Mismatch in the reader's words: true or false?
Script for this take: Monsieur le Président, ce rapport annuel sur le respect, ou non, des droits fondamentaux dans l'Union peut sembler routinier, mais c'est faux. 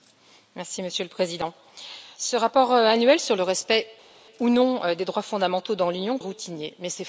true